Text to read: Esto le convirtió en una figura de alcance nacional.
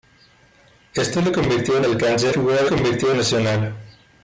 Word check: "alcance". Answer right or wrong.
wrong